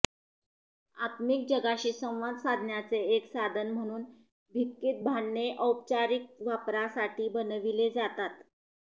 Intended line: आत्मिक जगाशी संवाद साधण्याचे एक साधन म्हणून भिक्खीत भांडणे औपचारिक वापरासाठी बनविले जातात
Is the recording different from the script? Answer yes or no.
no